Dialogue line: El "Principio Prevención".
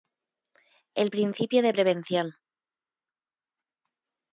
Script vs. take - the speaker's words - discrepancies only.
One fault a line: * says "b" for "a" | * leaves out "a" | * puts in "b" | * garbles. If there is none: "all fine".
* puts in "de"